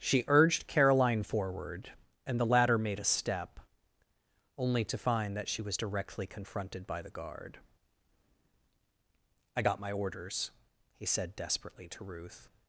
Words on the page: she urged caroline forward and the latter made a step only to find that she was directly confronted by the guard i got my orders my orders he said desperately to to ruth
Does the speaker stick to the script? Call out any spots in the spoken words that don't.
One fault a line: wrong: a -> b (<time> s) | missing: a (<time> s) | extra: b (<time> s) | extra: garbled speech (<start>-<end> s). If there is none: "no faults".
missing: my orders (10.5 s)
missing: to (12.0 s)